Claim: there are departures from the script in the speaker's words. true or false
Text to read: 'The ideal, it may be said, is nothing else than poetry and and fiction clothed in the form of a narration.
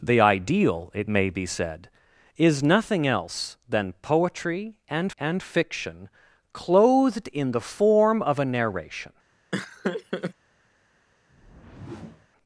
false